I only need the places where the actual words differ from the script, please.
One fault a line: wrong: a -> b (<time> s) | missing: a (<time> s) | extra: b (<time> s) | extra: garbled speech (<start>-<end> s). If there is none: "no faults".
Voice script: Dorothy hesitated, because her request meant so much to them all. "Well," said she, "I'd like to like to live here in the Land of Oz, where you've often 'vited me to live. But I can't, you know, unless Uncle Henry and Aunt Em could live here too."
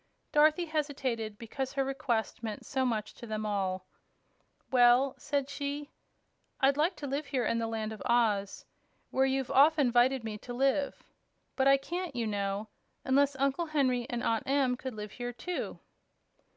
missing: like to (7.0 s)